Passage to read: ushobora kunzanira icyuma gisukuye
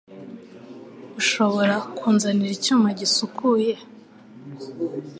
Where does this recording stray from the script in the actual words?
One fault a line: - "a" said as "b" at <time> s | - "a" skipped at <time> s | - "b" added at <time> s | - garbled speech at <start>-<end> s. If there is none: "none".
none